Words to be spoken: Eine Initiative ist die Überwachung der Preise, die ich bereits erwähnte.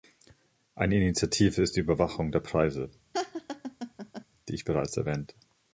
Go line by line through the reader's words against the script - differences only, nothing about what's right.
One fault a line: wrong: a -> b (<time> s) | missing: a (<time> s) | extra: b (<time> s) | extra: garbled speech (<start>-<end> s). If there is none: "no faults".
no faults